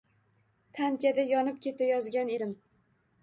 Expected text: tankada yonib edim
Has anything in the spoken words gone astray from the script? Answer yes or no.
yes